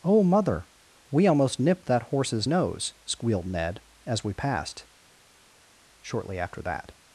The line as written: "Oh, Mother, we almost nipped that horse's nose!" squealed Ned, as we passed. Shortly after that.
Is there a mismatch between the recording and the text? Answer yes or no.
no